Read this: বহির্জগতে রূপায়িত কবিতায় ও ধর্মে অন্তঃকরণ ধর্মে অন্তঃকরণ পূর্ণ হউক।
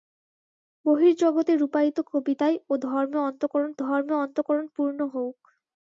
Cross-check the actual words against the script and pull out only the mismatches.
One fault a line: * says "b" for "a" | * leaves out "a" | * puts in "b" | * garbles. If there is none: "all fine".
all fine